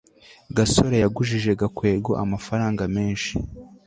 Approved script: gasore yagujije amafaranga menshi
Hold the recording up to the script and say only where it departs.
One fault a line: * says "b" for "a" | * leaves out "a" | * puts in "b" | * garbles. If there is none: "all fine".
* puts in "gakwego"